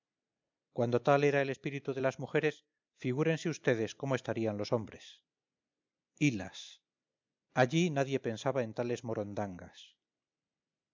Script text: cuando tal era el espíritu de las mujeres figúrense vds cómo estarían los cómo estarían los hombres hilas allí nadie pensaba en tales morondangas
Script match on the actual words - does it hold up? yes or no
no